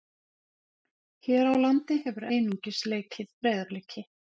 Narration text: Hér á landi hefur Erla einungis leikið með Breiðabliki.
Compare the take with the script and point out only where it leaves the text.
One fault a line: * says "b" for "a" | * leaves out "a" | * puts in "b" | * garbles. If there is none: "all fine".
* leaves out "Erla"
* leaves out "með"